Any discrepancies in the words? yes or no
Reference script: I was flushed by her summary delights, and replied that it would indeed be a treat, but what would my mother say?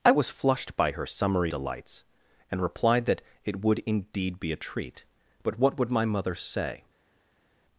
no